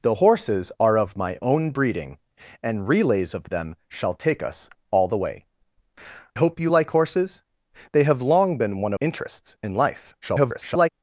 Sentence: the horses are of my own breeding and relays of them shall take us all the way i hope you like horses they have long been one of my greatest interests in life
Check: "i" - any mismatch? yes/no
yes